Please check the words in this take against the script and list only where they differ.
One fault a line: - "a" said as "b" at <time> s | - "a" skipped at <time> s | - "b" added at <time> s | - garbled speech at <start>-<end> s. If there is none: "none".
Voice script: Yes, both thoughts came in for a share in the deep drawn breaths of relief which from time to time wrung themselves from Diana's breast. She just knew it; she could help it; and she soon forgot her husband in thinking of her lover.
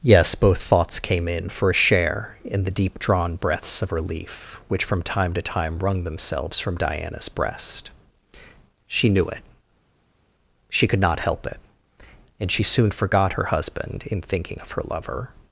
- "just" skipped at 9.1 s
- "not" added at 11.0 s